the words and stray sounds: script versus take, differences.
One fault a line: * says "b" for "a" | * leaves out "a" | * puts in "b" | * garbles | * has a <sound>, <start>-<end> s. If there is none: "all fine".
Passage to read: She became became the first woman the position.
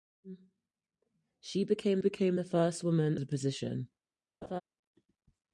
* has a laugh, 4.4-4.6 s